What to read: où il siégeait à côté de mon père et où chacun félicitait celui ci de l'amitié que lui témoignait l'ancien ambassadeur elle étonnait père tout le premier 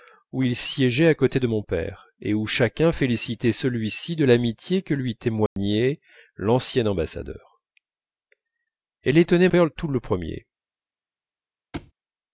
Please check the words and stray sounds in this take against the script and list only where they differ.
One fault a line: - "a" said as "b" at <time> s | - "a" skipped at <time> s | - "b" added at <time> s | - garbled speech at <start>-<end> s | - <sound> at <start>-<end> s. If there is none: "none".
- dropout at 5.5-5.6 s
- thud at 11.7-11.9 s